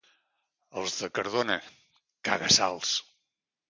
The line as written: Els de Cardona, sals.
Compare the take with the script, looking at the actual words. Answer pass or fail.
fail